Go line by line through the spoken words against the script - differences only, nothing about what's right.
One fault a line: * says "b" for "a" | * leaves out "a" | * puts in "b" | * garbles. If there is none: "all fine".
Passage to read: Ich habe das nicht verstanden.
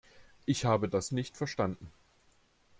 all fine